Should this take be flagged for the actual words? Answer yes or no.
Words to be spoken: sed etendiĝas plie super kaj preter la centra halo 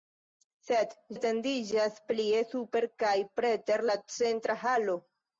no